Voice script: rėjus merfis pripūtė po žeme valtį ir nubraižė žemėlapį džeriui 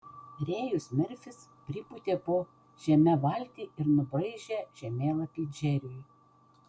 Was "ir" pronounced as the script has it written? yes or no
yes